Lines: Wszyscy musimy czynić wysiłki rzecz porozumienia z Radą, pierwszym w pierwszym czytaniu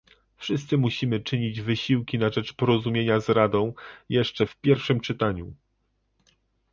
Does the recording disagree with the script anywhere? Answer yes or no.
yes